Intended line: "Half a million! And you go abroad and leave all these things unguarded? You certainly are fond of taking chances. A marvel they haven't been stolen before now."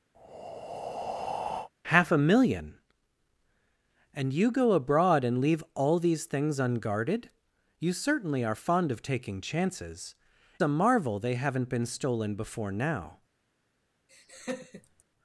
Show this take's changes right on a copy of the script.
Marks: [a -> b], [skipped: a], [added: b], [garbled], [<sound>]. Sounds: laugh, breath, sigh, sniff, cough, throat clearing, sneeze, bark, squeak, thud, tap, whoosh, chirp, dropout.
[breath] "Half a million! And you go abroad and leave all these things unguarded? You certainly are fond of taking chances. A marvel they haven't been stolen before now." [laugh]